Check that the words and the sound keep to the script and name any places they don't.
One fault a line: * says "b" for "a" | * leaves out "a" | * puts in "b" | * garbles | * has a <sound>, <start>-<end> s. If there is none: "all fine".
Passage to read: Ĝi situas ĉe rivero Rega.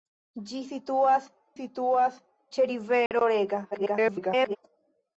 * puts in "situas"
* has a dropout, 3.1-3.1 s
* garbles